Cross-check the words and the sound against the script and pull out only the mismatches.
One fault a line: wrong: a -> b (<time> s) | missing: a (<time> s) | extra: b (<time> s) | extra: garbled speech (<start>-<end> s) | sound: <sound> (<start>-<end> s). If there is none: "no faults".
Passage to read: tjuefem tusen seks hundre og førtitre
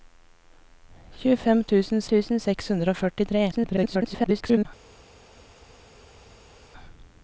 extra: tusen (2.1 s)
extra: garbled speech (3.5-4.7 s)